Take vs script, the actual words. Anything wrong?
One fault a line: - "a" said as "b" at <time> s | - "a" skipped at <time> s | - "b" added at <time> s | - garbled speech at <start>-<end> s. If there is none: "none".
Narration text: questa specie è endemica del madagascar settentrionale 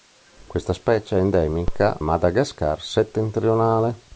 - "del" skipped at 2.0 s